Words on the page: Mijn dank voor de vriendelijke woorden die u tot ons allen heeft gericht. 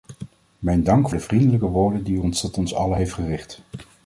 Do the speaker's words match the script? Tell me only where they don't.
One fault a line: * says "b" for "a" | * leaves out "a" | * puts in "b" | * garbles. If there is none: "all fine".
* leaves out "voor"